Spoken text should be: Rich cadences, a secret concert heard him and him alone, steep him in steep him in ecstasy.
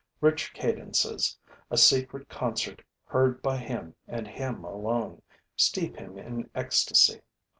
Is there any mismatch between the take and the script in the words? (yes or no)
yes